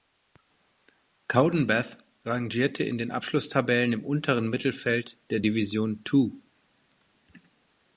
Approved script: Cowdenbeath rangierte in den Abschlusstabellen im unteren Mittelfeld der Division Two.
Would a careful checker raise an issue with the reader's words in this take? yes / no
no